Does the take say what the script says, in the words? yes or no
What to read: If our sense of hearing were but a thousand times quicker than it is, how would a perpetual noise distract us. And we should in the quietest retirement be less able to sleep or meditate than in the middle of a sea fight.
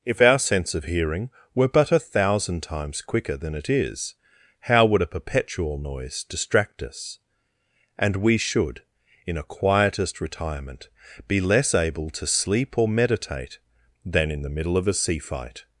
no